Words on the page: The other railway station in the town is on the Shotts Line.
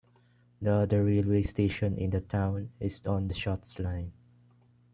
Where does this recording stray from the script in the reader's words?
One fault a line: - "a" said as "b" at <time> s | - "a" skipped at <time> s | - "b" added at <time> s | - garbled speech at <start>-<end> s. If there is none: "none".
none